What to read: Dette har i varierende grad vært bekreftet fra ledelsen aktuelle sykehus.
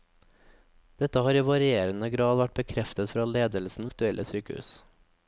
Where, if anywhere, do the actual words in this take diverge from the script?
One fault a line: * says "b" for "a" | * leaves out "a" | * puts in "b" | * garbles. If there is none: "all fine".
all fine